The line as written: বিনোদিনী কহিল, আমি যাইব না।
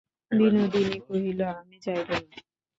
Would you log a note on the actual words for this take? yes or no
no